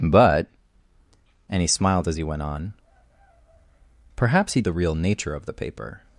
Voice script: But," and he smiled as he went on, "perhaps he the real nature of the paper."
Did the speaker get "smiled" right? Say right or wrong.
right